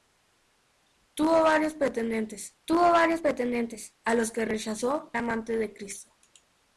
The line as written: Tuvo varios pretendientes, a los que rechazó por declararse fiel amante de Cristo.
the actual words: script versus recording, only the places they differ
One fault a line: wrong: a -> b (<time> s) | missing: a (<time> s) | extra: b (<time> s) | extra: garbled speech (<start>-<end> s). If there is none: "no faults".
extra: tuvo varios pretendientes (2.6 s)
missing: por declararse fiel (5.1 s)